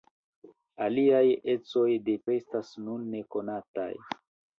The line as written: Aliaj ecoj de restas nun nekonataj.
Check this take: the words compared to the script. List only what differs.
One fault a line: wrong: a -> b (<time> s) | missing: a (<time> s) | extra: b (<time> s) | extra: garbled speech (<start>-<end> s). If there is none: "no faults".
no faults